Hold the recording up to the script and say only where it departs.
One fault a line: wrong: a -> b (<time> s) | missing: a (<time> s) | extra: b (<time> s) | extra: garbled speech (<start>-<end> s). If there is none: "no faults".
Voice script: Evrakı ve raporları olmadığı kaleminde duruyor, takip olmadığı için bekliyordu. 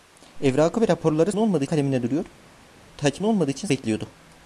no faults